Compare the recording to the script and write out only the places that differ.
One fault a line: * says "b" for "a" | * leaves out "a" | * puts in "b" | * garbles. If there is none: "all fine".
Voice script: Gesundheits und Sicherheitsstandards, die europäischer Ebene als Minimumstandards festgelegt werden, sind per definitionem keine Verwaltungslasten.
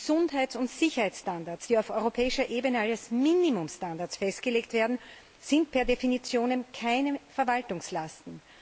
* puts in "auf"